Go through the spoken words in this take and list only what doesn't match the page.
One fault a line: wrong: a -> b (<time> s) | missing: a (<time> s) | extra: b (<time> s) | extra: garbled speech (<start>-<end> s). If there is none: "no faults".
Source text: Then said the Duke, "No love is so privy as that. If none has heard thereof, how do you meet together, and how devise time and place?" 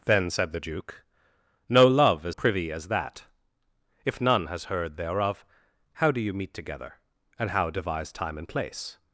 missing: so (2.4 s)